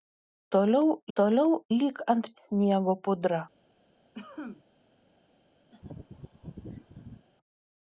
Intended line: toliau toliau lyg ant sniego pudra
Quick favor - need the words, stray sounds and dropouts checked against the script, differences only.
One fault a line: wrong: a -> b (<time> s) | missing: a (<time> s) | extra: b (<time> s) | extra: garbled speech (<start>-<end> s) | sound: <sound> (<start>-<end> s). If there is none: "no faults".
sound: cough (4.1-4.6 s)
sound: laugh (5.7-7.3 s)